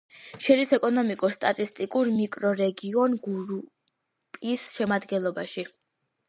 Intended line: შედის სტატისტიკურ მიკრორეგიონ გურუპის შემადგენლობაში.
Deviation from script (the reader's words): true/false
true